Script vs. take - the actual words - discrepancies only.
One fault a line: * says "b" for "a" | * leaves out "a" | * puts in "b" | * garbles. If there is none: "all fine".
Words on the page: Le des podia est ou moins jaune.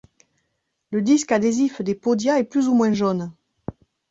* puts in "disque adhésif"
* puts in "plus"